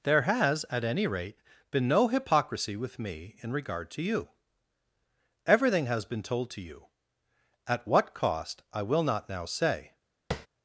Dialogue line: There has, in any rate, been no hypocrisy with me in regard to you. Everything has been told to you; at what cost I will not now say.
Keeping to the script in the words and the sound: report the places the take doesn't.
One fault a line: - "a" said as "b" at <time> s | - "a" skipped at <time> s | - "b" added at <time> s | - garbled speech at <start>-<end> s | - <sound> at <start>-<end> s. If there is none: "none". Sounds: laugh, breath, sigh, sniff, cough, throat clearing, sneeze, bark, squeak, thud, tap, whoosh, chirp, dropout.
- "in" said as "at" at 0.7 s
- tap at 10.3-10.5 s